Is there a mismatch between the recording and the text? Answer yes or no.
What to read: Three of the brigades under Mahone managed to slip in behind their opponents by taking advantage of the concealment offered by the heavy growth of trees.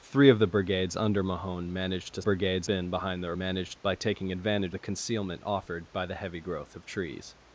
yes